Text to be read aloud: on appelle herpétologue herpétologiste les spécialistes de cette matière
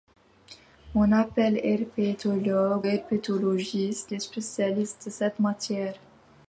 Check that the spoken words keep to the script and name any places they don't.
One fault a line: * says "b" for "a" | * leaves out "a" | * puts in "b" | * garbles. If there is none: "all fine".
all fine